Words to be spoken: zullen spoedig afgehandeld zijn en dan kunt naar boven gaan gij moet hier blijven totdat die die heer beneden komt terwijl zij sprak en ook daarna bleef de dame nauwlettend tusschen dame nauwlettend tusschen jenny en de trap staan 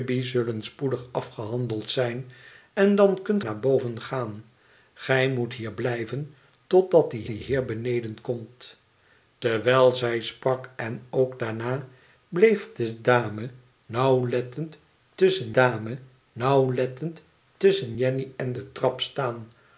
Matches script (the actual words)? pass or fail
pass